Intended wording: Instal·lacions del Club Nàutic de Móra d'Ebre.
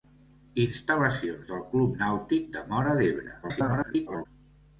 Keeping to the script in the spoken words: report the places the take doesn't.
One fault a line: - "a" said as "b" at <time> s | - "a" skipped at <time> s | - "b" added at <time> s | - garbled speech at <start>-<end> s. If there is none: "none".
- garbled speech at 3.4-4.3 s